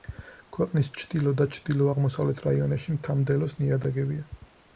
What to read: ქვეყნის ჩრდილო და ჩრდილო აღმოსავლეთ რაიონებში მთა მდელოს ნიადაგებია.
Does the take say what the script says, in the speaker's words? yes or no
yes